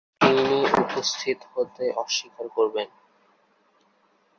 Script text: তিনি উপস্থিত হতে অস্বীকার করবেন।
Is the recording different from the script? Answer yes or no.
no